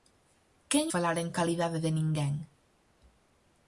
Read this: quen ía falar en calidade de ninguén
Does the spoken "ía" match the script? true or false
false